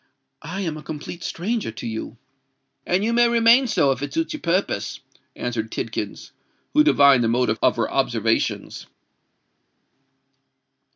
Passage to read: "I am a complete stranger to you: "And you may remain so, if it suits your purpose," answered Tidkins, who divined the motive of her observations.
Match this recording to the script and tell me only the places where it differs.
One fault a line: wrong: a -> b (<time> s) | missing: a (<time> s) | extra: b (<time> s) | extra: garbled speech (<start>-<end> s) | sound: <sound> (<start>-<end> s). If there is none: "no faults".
no faults